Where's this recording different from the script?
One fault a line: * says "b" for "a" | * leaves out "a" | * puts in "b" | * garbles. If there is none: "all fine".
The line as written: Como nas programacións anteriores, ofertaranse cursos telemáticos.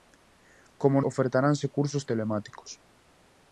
* leaves out "nas programacións anteriores"